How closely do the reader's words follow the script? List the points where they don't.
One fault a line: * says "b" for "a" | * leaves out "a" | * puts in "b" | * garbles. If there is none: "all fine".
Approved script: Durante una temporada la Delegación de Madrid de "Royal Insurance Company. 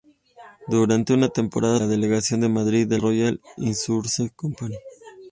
all fine